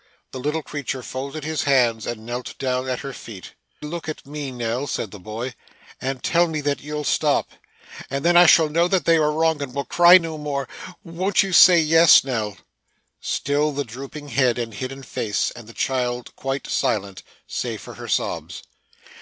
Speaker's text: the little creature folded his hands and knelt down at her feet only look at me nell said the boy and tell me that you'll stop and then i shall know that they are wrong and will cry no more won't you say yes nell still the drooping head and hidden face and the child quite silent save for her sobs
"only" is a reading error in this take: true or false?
true